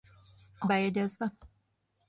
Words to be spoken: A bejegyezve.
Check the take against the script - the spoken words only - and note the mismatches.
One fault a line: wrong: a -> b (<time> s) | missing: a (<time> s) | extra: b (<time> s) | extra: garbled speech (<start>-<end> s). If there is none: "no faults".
no faults